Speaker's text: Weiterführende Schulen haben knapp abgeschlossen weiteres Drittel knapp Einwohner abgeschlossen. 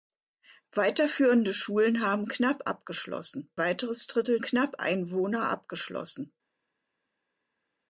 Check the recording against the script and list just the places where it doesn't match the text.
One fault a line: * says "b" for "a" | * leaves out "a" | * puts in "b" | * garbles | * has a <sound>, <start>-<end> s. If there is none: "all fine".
all fine